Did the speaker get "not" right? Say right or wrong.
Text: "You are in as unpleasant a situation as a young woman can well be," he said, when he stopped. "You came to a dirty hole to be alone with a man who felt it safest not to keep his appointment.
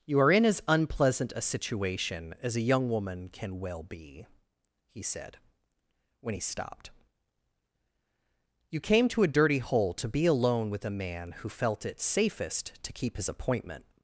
wrong